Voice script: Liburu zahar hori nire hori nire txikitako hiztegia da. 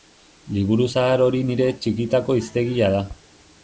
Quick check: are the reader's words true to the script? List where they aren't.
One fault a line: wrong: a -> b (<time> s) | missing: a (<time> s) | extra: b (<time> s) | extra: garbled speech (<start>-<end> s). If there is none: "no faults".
missing: hori nire (1.7 s)